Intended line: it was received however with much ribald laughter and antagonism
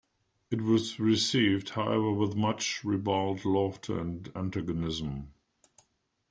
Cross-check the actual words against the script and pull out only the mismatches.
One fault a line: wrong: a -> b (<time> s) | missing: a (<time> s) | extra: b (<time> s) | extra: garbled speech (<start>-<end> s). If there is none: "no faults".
no faults